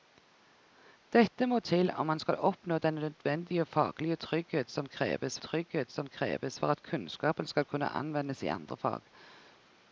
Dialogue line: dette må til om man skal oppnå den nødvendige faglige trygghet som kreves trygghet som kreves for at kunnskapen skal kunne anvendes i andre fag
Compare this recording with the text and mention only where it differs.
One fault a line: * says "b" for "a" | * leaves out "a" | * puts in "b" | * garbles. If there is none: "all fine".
all fine